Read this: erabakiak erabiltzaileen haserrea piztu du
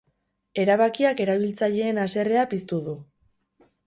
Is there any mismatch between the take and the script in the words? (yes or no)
no